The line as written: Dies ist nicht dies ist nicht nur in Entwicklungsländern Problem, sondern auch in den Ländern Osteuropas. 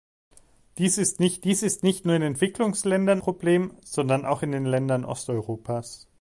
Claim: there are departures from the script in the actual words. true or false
false